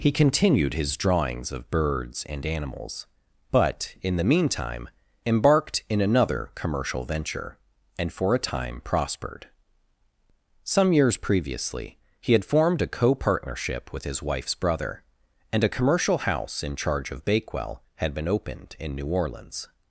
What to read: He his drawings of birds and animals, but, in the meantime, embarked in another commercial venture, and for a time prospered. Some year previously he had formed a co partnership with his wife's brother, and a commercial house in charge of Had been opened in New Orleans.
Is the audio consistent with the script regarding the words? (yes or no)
no